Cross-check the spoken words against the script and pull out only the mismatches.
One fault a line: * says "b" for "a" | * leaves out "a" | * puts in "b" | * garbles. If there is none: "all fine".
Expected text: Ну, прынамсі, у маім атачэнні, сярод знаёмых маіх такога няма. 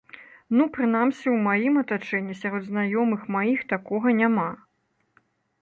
all fine